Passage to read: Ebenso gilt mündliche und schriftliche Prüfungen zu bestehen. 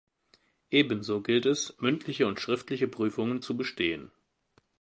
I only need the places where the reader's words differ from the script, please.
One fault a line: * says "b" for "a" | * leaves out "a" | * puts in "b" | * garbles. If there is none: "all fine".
* puts in "es"